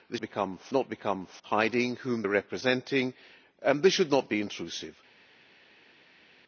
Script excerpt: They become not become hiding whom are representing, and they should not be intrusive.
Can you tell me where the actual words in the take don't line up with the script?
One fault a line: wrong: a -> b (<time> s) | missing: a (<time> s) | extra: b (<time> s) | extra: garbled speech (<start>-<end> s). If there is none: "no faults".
no faults